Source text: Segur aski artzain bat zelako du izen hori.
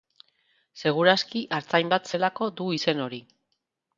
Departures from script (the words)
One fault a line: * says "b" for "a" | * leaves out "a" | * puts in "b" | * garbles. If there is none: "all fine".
all fine